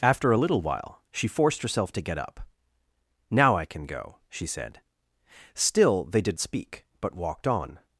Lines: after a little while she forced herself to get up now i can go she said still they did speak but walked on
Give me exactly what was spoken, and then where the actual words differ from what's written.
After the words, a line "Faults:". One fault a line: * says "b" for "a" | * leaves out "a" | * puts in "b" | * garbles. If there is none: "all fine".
after a little while she forced herself to get up now i can go she said still they did speak but walked on
Faults:
all fine